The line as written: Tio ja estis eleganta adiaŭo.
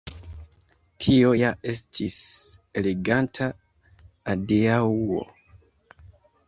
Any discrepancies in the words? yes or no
no